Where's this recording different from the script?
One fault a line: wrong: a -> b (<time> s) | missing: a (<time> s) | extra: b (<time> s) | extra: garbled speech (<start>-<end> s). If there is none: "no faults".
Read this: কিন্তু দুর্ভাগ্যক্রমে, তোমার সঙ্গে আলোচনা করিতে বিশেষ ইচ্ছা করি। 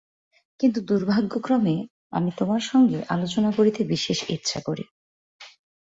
extra: আমি (2.1 s)